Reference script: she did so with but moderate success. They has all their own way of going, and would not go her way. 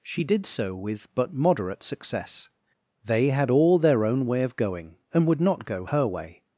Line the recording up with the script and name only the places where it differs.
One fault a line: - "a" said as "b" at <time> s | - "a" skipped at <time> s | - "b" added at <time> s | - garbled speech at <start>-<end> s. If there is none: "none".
- "has" said as "had" at 3.3 s